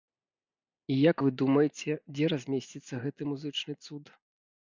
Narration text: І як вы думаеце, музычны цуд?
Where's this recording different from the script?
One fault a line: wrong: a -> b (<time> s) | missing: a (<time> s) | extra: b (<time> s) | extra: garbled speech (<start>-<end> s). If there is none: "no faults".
extra: дзе размесціцца гэты (2.1 s)